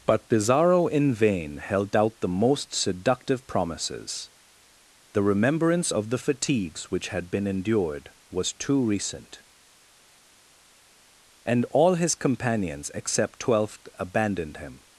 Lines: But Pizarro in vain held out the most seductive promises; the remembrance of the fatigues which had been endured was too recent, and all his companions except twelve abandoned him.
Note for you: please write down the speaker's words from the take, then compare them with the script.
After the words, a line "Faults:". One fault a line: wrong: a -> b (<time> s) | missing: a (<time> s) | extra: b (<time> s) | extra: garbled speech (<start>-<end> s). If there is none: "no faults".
But Pizarro in vain held out the most seductive promises; the remembrance of the fatigues which had been endured was too recent, and all his companions except twelfth abandoned him.
Faults:
wrong: twelve -> twelfth (13.4 s)